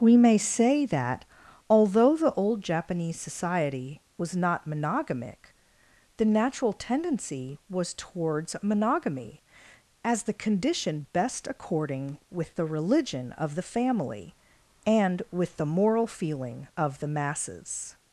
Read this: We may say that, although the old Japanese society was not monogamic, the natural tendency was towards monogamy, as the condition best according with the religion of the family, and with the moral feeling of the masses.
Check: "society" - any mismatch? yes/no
no